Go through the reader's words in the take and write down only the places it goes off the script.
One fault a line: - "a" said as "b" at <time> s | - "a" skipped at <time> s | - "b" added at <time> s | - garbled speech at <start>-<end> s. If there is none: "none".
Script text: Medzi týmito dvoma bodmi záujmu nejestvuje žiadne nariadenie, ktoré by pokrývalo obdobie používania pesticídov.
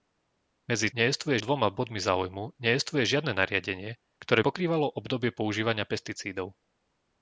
- "týmito" said as "nejestvuje" at 1.0 s
- "by" skipped at 4.4 s